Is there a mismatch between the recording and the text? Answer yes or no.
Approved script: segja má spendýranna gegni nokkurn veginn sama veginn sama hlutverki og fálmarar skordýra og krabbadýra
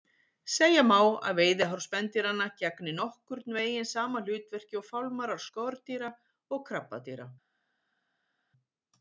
yes